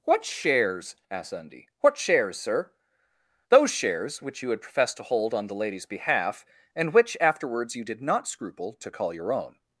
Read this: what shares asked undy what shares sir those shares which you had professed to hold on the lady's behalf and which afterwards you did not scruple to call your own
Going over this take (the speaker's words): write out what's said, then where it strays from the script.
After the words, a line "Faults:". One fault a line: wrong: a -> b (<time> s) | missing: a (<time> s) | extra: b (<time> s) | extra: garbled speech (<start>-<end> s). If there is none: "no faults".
what shares asked undy what shares sir those shares which you had professed to hold on the lady's behalf and which afterwards you did not scruple to call your own
Faults:
no faults